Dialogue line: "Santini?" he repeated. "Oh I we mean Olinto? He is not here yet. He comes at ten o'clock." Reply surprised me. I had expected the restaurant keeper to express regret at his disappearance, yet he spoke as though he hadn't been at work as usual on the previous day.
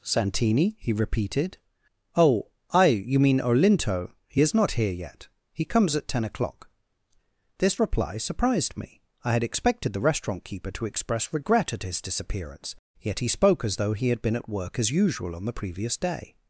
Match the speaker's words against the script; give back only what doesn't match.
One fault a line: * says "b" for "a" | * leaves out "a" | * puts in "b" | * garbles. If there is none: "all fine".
* says "you" for "we"
* puts in "This"
* says "had" for "hadn't"